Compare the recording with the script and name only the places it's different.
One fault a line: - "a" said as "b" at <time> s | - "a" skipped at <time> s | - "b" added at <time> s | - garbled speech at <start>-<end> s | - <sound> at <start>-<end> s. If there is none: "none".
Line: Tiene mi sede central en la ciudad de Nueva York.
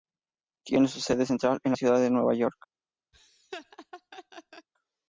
- "mi" said as "su" at 0.9 s
- laugh at 3.1-4.7 s